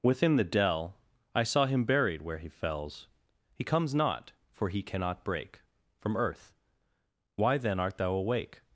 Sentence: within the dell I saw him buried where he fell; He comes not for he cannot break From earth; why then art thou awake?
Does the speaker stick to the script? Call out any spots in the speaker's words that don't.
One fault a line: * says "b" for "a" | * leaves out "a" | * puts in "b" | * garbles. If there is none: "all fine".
* says "fells" for "fell"